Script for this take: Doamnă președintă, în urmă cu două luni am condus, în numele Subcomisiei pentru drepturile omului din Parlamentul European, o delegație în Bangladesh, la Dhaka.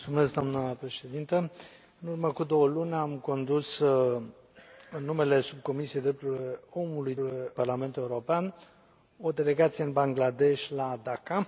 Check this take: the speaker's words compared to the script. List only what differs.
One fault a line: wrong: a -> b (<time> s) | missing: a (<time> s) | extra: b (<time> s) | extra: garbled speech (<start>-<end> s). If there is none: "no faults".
wrong: din -> drepturile (7.2 s)